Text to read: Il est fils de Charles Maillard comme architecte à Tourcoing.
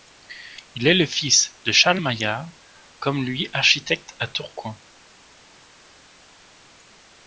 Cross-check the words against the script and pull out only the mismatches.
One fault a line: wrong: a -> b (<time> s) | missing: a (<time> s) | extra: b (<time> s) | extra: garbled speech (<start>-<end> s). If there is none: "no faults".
extra: le (0.9 s)
extra: lui (3.2 s)